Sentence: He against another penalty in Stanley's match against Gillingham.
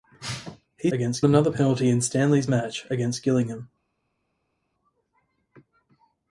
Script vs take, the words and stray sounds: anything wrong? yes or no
no